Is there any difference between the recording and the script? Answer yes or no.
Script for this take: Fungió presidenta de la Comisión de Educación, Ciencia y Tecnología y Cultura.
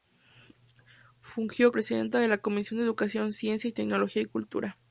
no